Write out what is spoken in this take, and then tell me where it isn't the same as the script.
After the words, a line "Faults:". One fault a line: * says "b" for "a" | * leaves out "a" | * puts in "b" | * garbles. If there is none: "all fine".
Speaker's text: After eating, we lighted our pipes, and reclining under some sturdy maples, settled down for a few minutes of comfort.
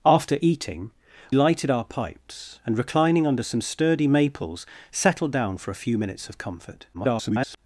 After eating, lighted our pipes, and reclining under some sturdy maples, settled down for a few minutes of comfort. [garbled]
Faults:
* leaves out "we"
* garbles